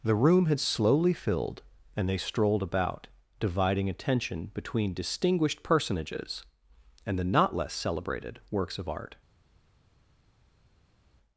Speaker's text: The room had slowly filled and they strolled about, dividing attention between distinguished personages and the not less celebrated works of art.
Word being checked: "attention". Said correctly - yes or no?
yes